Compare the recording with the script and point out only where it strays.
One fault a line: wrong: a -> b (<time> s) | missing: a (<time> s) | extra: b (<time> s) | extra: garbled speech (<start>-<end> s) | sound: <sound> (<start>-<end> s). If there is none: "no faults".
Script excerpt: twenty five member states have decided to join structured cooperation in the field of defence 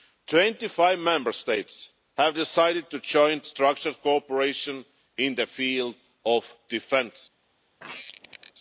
sound: squeak (7.8-8.5 s)